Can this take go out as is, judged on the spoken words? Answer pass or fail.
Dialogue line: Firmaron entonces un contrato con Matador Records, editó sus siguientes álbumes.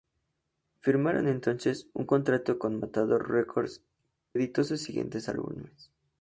pass